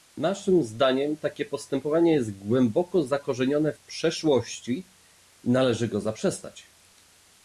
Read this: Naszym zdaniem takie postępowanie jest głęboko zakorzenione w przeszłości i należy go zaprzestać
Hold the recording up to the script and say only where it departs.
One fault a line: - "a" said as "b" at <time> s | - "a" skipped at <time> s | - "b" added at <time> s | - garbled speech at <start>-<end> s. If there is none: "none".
none